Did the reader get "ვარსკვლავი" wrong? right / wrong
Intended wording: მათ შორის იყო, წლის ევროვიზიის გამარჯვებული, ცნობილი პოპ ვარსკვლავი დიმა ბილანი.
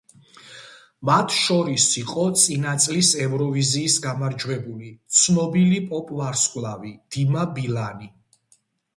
right